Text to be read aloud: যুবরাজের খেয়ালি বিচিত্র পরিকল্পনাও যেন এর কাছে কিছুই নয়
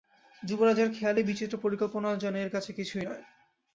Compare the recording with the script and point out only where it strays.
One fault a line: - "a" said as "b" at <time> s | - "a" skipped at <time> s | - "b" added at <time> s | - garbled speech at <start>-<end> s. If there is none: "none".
none